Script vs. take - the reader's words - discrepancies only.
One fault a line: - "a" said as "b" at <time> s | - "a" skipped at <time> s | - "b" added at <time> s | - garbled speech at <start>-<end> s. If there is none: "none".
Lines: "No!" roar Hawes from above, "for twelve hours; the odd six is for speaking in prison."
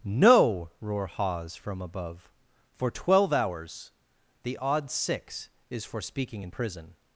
none